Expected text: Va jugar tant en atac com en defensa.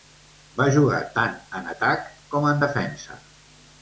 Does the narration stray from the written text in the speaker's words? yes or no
no